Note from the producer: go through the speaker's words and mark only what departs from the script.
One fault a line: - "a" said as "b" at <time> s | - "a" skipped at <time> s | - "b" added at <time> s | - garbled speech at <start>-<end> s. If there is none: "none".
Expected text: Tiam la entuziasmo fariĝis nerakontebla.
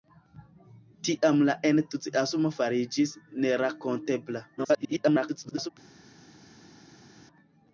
- garbled speech at 4.6-5.7 s